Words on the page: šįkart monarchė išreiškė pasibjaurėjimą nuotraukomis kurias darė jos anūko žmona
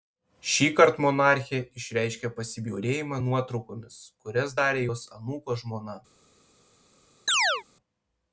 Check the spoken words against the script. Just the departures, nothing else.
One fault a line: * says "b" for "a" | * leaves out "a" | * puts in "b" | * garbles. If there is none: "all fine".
all fine